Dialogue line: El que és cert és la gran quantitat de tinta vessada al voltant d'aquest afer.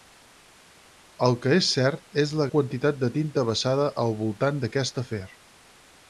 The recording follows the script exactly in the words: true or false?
false